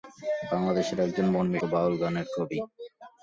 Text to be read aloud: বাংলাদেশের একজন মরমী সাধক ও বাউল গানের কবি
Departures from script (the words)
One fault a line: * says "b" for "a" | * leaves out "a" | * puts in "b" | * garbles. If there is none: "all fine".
* leaves out "সাধক"